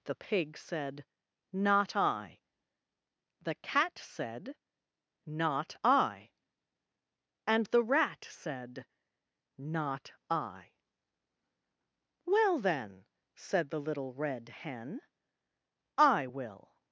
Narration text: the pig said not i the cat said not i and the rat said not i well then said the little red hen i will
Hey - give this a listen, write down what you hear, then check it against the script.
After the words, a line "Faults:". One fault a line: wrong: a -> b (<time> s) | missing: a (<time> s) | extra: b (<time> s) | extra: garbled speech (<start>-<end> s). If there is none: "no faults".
the pig said not i the cat said not i and the rat said not i well then said the little red hen i will
Faults:
no faults